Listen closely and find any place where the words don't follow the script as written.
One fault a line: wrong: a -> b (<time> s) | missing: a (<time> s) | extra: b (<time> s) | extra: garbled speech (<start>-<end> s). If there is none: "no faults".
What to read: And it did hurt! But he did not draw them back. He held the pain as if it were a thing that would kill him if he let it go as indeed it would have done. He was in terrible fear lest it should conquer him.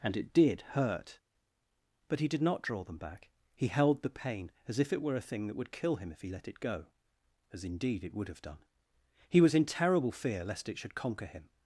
no faults